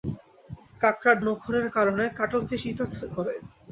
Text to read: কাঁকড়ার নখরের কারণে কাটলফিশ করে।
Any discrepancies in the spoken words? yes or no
no